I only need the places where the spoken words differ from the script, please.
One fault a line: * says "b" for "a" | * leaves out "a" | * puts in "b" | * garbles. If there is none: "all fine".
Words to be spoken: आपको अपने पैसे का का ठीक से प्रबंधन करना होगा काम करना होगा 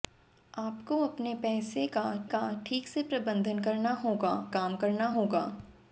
all fine